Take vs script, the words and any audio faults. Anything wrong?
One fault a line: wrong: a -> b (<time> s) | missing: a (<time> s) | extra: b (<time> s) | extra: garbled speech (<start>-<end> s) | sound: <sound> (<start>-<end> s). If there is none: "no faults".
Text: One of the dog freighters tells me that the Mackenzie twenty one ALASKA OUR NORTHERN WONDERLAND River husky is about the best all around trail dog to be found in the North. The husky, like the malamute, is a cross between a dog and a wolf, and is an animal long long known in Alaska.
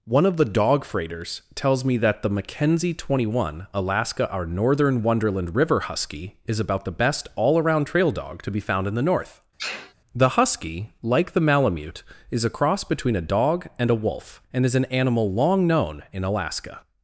sound: sneeze (9.6-9.9 s)
missing: long (15.7 s)